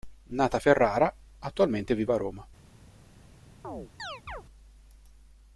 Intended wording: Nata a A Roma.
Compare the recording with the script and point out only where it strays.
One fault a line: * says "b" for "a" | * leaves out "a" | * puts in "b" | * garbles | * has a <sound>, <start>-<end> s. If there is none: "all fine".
* puts in "Ferrara attualmente vive"
* has a chirp, 3.6-4.4 s